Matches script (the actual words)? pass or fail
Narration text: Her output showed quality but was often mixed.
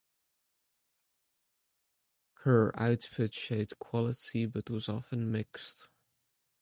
pass